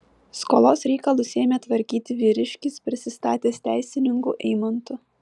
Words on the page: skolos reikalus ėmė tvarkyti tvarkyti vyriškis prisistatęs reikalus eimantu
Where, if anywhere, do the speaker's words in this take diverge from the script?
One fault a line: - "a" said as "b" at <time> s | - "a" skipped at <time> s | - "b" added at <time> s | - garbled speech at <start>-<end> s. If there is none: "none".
- "tvarkyti" skipped at 2.2 s
- "reikalus" said as "teisininku" at 3.7 s